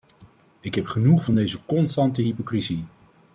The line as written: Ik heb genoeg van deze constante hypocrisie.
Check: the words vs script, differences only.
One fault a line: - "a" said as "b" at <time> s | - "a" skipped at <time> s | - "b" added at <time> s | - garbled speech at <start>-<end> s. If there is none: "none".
none